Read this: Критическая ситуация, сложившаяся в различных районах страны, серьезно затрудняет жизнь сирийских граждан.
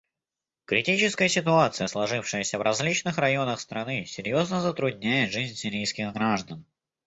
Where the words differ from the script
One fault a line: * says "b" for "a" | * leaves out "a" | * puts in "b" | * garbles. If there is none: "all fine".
all fine